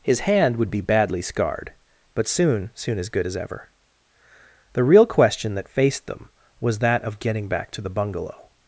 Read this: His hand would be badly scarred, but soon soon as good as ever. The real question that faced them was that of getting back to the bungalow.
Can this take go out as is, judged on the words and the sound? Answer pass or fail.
pass